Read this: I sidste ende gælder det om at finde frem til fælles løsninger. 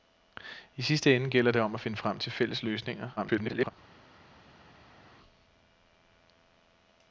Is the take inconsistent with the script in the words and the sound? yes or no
yes